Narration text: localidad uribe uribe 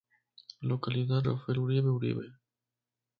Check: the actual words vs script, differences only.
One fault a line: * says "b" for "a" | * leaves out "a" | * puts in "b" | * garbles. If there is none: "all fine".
* puts in "rafael"